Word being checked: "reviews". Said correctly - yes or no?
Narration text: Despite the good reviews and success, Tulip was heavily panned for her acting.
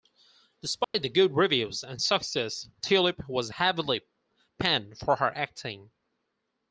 yes